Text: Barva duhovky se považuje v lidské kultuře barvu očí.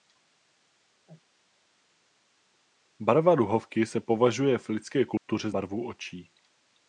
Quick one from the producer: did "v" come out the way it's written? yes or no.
yes